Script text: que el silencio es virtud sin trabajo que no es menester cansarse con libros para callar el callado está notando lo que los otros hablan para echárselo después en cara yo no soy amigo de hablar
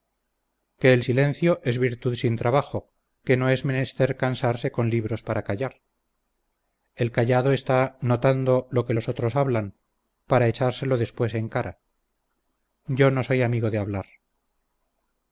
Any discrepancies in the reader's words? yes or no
no